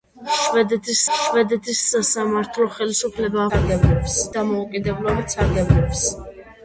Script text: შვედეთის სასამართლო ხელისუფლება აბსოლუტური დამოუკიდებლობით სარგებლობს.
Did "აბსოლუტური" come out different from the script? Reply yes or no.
yes